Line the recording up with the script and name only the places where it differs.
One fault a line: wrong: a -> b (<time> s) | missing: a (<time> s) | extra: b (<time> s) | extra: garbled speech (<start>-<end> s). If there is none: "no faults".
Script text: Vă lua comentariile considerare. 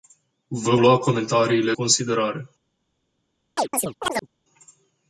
no faults